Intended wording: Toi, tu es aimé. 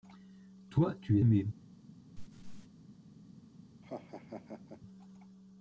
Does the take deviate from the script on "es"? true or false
true